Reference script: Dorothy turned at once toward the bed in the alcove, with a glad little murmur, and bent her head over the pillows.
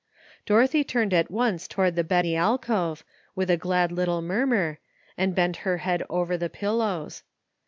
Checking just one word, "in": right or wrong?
wrong